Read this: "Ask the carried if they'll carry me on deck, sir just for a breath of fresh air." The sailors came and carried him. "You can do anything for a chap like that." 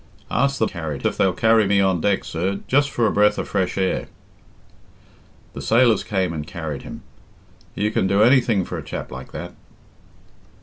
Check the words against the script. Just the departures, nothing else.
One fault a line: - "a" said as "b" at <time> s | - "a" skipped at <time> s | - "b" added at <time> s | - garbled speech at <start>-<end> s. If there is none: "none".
none